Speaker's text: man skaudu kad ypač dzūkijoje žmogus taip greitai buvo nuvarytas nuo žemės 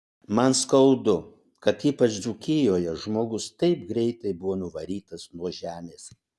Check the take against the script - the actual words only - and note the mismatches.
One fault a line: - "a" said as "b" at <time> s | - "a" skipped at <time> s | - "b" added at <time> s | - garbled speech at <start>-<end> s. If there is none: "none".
none